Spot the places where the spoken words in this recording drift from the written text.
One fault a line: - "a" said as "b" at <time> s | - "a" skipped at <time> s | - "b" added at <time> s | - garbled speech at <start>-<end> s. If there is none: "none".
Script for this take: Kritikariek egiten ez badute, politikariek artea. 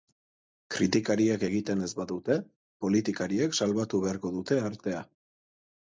- "salbatu beharko dute" added at 3.6 s